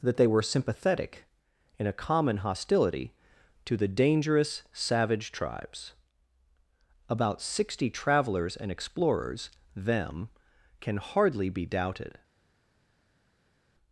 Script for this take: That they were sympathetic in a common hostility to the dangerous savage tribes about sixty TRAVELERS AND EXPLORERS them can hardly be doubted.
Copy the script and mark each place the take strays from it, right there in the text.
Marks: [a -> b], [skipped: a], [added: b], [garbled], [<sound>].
That they were sympathetic in a common hostility to the dangerous savage tribes about sixty TRAVELERS AND EXPLORERS them can hardly be doubted.